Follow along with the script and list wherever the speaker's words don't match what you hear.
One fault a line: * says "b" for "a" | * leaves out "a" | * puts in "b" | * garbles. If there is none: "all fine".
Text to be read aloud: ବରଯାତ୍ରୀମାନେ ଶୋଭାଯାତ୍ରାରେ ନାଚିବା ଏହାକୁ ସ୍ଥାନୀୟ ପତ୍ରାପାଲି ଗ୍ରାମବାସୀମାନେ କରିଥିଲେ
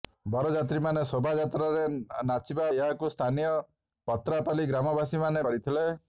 all fine